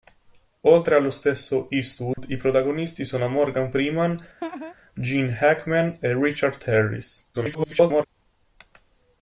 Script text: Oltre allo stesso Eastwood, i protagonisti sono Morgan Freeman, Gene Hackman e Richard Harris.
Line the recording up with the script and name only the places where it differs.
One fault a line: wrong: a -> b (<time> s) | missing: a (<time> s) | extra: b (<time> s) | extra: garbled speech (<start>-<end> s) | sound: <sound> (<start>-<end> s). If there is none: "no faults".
sound: dropout (2.1-2.2 s)
sound: laugh (4.4-4.7 s)
extra: garbled speech (7.3-8.0 s)